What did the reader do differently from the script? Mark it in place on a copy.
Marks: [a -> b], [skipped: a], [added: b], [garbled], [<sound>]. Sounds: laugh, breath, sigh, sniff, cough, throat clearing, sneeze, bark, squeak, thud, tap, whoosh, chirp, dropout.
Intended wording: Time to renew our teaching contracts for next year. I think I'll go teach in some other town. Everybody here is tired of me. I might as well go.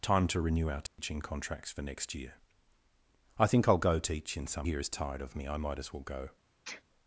Time to renew our teaching [dropout] contracts for next year. I think I'll go teach in some [skipped: other town. Everybody] here is tired of me. I might as well go. [sneeze]